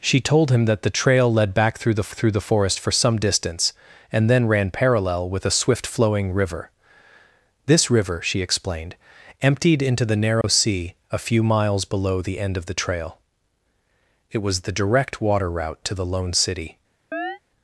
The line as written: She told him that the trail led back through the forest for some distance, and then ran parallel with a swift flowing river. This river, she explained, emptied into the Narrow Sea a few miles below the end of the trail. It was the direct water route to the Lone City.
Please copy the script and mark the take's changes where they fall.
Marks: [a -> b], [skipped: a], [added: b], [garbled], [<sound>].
She told him that the trail led back through the [added: through the] forest for some distance, and then ran parallel with a swift flowing river. This river, she explained, emptied into the Narrow [dropout] Sea a few miles below the end of the trail. It was the direct water route to the Lone City. [chirp]